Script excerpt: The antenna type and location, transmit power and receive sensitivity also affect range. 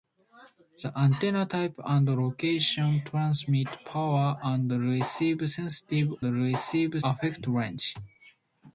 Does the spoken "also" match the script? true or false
false